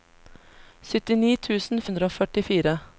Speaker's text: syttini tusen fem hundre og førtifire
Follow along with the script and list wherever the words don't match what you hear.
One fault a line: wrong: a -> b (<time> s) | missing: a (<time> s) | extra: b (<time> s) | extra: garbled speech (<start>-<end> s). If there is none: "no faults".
missing: fem (1.9 s)